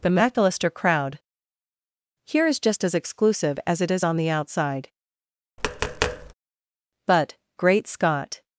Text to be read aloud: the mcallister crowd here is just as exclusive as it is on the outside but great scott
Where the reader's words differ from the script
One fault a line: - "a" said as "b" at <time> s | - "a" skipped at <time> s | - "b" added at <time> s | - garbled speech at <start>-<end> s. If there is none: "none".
none